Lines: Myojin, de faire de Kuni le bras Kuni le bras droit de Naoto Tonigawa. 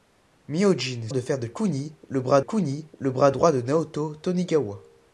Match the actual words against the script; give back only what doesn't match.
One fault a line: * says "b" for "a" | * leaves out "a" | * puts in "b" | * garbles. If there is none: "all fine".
all fine